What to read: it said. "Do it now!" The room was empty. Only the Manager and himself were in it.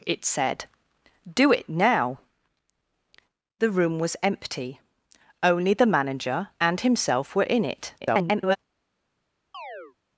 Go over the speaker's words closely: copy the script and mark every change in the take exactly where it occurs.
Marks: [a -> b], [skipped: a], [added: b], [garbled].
it said. "Do it now!" The room was empty. Only the Manager and himself were in it. [garbled]